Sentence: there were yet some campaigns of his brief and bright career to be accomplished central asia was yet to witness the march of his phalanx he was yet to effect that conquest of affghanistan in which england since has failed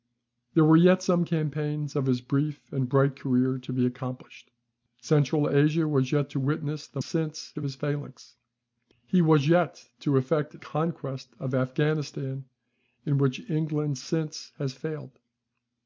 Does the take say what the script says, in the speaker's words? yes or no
no